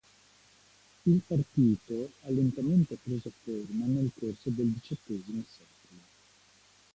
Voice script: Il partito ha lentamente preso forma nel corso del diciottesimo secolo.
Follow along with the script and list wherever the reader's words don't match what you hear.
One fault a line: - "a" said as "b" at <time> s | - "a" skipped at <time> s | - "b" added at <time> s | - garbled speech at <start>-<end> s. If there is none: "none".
none